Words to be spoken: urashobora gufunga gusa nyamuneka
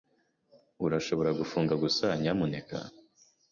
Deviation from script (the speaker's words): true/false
false